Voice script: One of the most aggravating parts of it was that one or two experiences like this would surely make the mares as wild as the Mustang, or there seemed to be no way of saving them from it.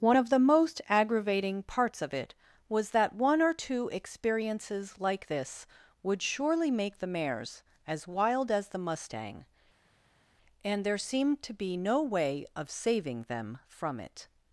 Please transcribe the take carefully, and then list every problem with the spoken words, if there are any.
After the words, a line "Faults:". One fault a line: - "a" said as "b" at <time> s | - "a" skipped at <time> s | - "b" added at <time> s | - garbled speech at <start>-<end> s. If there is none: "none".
One of the most aggravating parts of it was that one or two experiences like this would surely make the mares as wild as the Mustang, and there seemed to be no way of saving them from it.
Faults:
- "or" said as "and" at 10.6 s